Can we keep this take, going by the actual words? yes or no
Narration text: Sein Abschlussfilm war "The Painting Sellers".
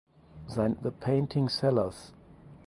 no